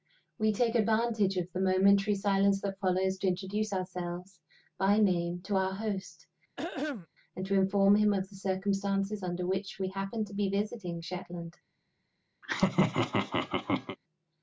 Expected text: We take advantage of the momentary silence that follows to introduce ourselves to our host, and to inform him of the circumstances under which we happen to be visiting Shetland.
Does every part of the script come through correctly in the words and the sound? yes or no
no